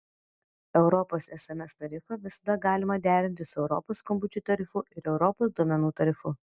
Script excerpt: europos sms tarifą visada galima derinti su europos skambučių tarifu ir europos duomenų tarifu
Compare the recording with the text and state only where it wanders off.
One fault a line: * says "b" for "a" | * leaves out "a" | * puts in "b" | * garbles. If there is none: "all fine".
all fine